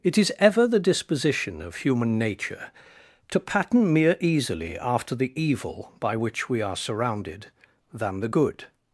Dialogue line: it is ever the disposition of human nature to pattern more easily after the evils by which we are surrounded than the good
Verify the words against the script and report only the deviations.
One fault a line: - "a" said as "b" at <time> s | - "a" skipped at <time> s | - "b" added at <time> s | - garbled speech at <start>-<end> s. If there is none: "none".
- "more" said as "mere" at 3.9 s
- "evils" said as "evil" at 5.4 s